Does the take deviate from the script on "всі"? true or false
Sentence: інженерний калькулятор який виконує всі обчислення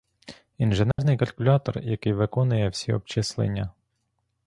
false